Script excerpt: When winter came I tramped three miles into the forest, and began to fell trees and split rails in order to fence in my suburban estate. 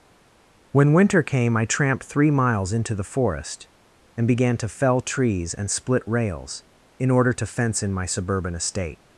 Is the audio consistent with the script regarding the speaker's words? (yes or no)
yes